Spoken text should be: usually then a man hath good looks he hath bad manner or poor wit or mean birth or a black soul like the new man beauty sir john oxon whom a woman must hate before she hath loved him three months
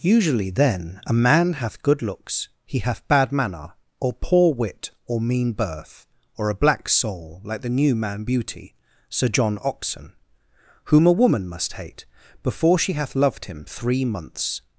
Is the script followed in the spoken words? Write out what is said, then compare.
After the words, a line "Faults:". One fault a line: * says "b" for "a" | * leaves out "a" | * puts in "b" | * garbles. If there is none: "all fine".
usually then a man hath good looks he hath bad manner or poor wit or mean birth or a black soul like the new man beauty sir john oxon whom a woman must hate before she hath loved him three months
Faults:
all fine